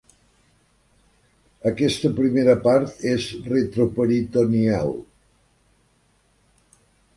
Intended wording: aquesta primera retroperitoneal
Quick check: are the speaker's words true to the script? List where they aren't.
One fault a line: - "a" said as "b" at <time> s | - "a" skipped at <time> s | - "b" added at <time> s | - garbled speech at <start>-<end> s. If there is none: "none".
- "part és" added at 2.7 s